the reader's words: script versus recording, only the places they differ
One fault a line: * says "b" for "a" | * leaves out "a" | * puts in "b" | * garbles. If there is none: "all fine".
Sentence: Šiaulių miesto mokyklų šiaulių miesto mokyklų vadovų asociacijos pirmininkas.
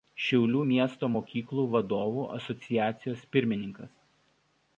* leaves out "šiaulių miesto mokyklų"